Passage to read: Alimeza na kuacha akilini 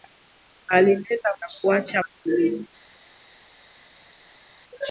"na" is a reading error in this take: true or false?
false